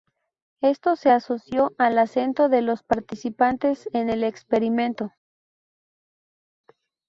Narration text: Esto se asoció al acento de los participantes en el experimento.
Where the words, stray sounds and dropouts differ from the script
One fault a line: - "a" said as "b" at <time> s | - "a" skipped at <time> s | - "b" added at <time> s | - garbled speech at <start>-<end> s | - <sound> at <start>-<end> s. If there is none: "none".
none